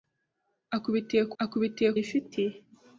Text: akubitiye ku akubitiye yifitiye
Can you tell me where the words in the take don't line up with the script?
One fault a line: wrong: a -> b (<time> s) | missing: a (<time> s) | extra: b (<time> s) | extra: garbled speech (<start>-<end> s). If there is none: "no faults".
no faults